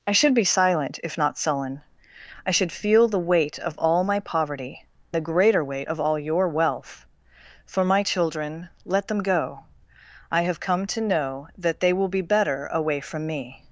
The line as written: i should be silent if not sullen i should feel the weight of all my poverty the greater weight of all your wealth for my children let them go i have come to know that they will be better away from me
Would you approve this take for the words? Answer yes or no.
yes